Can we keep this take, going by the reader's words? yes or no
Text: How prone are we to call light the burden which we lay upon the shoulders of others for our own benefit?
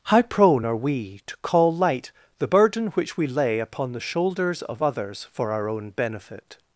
yes